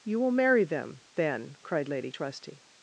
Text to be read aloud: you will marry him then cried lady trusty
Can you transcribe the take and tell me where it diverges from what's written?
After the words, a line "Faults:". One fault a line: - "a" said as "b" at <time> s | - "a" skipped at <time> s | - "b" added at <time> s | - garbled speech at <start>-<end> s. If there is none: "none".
you will marry them then cried lady trusty
Faults:
- "him" said as "them" at 0.6 s